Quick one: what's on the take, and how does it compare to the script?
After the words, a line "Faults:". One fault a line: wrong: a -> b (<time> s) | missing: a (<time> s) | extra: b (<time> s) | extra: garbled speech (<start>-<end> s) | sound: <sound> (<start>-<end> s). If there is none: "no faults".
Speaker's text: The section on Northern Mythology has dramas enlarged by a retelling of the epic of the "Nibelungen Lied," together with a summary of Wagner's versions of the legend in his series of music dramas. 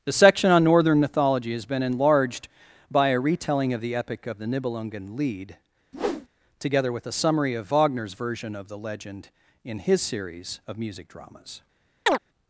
The section on Northern Mythology has been enlarged by a retelling of the epic of the "Nibelungen Lied," together with a summary of Wagner's version of the legend in his series of music dramas.
Faults:
wrong: dramas -> been (1.7 s)
sound: whoosh (5.9-6.3 s)
wrong: versions -> version (8.1 s)
sound: chirp (12.1-12.2 s)